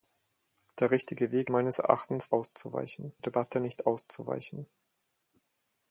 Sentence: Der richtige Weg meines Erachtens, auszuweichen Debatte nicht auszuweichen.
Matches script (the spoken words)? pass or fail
pass